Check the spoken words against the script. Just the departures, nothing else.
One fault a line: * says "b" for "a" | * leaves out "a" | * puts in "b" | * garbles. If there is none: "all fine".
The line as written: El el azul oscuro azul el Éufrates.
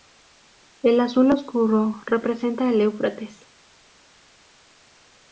* leaves out "el"
* says "representa" for "azul"